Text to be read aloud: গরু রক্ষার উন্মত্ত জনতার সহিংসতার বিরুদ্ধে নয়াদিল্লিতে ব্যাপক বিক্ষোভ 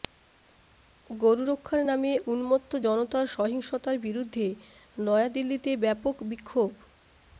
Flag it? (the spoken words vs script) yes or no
yes